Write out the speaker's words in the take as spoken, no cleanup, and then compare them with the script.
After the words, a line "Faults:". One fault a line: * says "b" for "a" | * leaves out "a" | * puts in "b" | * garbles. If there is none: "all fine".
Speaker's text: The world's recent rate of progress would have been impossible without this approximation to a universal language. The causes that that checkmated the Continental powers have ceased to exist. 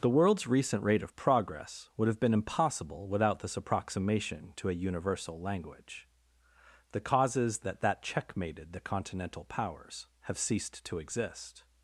The world's recent rate of progress would have been impossible without this approximation to a universal language. The causes that that checkmated the Continental powers have ceased to exist.
Faults:
all fine